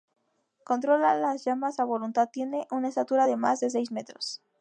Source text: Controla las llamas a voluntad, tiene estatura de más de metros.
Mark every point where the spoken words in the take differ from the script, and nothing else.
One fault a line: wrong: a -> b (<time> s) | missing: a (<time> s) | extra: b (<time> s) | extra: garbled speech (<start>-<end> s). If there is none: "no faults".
extra: una (2.7 s)
extra: seis (3.7 s)